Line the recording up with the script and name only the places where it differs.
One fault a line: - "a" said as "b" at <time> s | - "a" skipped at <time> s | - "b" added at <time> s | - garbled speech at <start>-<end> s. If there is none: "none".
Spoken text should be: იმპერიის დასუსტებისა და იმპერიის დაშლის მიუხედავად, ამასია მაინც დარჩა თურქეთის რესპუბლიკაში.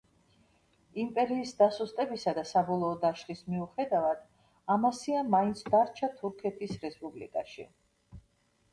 - "იმპერიის" said as "საბოლოო" at 2.5 s